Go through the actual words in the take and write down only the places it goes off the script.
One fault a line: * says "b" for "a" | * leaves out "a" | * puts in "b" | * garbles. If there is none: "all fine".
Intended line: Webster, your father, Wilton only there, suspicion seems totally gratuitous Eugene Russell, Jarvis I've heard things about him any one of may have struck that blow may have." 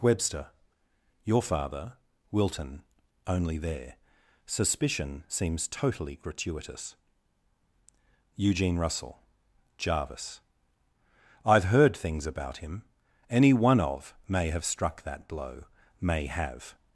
all fine